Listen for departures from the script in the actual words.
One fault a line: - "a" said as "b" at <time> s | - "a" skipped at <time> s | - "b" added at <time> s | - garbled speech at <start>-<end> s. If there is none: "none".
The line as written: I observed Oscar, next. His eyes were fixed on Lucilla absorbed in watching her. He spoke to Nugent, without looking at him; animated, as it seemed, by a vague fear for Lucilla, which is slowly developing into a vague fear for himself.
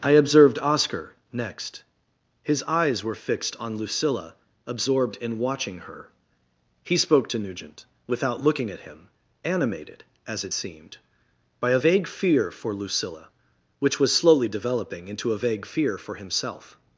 - "is" said as "was" at 14.0 s